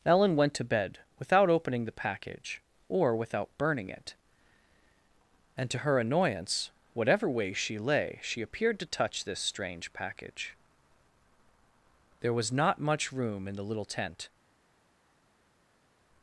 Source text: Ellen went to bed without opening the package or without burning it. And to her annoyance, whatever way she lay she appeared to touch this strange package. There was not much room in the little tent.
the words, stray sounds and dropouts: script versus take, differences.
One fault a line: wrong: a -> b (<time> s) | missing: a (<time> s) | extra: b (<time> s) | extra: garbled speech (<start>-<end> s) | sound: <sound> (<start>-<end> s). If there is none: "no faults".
no faults